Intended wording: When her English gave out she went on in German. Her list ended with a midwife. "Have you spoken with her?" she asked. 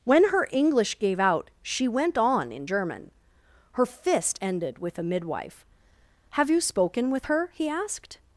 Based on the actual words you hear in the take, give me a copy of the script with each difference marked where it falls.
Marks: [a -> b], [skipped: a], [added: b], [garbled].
When her English gave out she went on in German. Her [list -> fist] ended with a midwife. "Have you spoken with her?" [she -> he] asked.